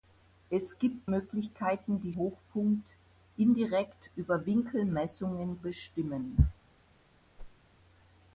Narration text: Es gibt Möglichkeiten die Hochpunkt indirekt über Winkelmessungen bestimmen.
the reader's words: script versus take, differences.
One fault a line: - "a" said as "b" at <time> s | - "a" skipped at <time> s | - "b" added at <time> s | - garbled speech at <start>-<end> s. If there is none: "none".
none